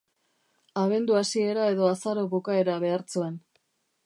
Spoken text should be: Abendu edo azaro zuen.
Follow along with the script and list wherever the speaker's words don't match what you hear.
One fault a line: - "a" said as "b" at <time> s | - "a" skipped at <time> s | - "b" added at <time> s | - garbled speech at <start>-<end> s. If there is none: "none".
- "hasiera" added at 1.2 s
- "bukaera behar" added at 2.4 s